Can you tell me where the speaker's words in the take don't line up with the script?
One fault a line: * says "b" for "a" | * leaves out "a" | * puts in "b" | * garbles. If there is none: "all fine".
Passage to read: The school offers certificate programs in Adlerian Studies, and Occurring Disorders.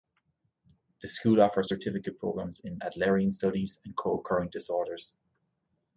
* puts in "Co"